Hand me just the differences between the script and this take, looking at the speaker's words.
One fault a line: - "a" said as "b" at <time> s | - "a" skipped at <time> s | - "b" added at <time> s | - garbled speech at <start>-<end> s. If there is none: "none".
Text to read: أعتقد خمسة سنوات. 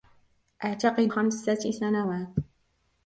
none